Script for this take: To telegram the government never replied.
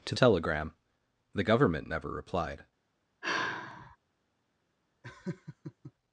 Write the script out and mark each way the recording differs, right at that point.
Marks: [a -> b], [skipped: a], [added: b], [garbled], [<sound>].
To telegram the government never replied. [sigh] [laugh]